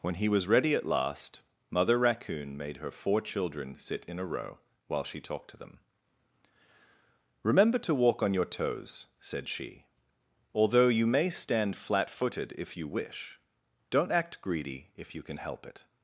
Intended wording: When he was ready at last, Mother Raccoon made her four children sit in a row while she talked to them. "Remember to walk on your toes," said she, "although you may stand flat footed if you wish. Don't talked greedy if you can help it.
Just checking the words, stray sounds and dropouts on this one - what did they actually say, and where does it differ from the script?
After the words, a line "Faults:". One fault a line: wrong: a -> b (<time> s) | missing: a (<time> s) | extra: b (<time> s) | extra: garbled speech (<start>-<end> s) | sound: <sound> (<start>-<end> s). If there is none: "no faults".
When he was ready at last, Mother Raccoon made her four children sit in a row while she talked to them. "Remember to walk on your toes," said she, "although you may stand flat footed if you wish. Don't act greedy if you can help it.
Faults:
wrong: talked -> act (14.1 s)